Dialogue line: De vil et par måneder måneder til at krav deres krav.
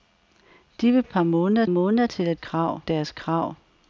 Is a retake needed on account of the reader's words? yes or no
no